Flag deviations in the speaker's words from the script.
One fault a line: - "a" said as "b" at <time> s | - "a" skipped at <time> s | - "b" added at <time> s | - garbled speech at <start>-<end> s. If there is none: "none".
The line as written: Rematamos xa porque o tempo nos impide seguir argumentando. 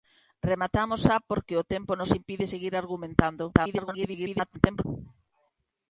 - garbled speech at 3.5-4.8 s